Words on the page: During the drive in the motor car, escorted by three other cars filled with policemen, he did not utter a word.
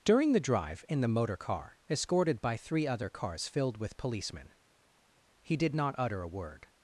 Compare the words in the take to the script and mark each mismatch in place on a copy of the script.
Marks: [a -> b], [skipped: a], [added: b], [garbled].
During the drive in the motor car, escorted by three other cars filled with policemen, he did not utter a word.